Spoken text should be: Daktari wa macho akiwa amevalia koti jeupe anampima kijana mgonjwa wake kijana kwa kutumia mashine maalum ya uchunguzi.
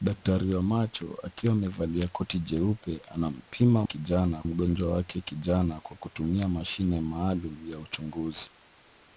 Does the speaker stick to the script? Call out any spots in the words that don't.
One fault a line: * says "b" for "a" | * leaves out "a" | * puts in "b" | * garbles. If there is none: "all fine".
all fine